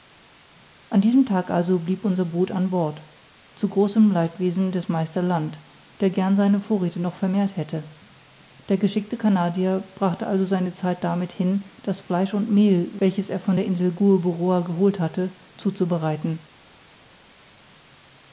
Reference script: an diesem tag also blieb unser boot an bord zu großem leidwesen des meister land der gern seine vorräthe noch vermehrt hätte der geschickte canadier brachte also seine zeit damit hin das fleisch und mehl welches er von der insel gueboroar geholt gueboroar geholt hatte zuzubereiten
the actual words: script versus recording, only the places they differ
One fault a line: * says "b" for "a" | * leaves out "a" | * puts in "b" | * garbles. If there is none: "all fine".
* leaves out "gueboroar geholt"